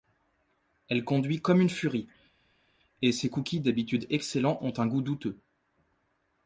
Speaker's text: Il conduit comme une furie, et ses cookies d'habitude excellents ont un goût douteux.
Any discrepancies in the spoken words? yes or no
yes